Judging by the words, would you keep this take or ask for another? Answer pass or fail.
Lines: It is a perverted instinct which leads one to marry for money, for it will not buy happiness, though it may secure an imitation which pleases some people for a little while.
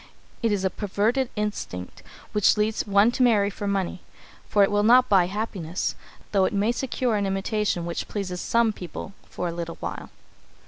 pass